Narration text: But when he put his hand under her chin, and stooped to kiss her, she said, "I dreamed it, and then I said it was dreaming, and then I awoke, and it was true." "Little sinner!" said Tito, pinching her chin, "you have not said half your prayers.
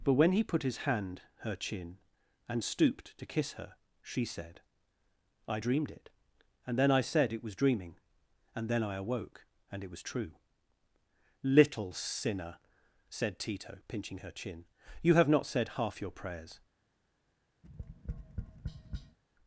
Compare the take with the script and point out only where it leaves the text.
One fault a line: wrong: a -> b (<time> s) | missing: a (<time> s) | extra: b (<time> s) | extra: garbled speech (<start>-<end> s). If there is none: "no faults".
missing: under (1.2 s)